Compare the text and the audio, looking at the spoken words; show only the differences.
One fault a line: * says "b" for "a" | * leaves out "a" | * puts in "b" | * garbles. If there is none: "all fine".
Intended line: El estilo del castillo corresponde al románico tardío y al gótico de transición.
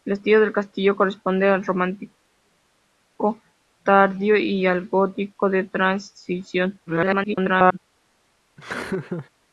* garbles